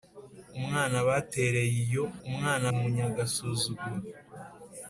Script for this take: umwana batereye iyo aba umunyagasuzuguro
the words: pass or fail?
fail